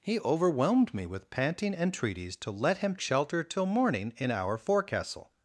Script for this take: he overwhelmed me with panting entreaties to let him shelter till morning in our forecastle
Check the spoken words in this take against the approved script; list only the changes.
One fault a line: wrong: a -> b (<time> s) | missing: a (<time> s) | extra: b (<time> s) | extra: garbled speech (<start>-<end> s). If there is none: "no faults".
no faults